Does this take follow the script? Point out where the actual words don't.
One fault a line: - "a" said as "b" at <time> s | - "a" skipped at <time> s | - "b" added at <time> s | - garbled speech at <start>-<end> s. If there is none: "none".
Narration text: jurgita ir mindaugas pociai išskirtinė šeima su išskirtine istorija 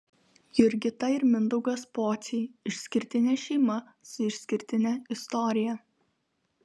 none